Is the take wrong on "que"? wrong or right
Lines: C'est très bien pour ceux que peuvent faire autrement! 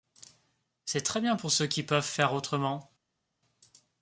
wrong